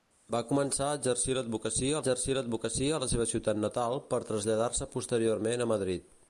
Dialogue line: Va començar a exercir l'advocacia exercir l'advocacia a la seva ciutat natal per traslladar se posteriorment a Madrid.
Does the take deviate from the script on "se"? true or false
false